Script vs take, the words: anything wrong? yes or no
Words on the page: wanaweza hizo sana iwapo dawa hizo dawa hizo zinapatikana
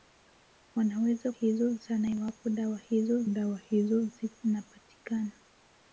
no